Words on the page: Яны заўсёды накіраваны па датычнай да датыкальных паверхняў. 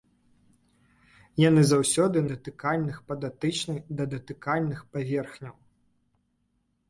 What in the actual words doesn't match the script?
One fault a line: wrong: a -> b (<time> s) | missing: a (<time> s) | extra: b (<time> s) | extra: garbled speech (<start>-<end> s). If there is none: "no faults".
wrong: накіраваны -> датыкальных (2.3 s)